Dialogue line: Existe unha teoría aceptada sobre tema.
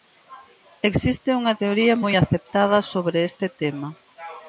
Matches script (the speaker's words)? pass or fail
fail